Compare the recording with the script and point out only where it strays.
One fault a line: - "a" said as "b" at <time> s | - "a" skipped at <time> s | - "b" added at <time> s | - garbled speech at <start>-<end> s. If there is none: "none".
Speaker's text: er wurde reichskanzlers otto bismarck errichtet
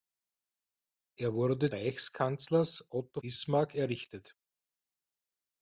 none